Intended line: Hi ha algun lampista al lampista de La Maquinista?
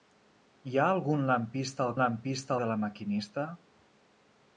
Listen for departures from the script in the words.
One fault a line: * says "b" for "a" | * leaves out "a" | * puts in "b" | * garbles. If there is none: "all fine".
all fine